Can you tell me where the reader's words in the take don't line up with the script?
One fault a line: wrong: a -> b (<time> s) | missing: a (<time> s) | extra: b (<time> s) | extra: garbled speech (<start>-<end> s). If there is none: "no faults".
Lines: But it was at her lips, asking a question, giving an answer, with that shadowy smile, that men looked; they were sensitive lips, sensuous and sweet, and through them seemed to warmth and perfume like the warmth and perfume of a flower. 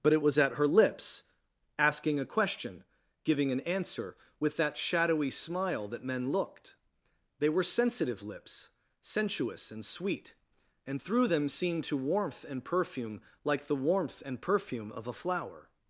no faults